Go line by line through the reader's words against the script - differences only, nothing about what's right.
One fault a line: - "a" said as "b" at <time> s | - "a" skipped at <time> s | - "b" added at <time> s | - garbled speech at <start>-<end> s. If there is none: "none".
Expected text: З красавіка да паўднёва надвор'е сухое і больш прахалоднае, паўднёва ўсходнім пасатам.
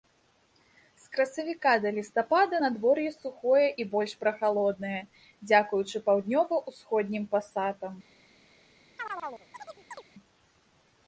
- "паўднёва" said as "лістапада" at 2.0 s
- "дзякуючы" added at 5.5 s